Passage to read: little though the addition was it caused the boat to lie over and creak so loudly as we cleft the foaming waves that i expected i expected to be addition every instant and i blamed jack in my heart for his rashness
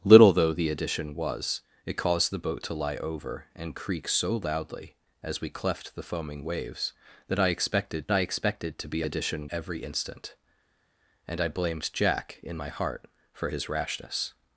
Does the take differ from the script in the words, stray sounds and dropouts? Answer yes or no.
no